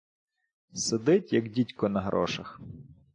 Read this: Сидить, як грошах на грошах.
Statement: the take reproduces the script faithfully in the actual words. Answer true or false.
false